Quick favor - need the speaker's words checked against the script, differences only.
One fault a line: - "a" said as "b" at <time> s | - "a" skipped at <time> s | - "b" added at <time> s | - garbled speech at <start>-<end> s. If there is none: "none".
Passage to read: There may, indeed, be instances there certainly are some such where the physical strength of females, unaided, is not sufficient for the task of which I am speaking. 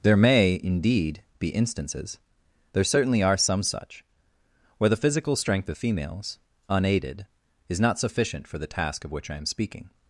none